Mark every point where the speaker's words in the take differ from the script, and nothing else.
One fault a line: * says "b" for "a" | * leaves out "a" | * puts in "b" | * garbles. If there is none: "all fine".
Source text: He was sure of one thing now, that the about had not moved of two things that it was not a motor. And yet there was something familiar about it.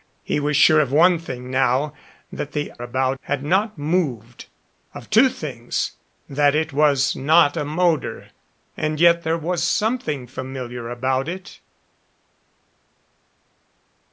all fine